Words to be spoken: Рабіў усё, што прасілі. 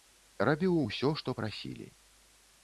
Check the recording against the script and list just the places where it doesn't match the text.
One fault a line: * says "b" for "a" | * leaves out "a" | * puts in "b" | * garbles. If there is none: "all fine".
all fine